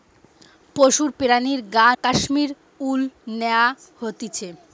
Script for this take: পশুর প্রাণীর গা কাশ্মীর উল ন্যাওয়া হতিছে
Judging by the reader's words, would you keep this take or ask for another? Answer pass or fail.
pass